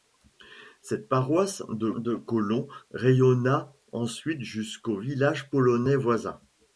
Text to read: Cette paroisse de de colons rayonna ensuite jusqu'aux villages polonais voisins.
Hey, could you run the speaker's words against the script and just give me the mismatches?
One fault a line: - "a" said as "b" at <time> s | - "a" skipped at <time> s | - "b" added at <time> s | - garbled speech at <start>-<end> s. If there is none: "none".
none